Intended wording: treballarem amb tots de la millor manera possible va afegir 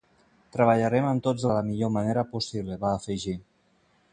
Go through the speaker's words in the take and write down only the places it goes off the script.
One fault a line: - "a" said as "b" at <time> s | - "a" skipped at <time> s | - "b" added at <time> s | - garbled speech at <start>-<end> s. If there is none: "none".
none